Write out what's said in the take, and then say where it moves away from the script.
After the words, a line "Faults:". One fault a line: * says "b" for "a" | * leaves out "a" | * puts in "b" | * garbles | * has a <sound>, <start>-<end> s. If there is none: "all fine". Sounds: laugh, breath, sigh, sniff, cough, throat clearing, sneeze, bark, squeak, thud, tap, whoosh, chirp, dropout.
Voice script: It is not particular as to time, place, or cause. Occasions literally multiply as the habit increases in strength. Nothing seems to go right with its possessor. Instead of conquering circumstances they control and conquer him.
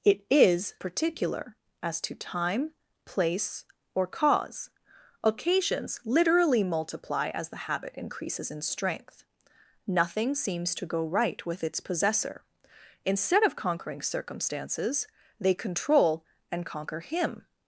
It is particular as to time, place, or cause. Occasions literally multiply as the habit increases in strength. Nothing seems to go right with its possessor. Instead of conquering circumstances they control and conquer him.
Faults:
* leaves out "not"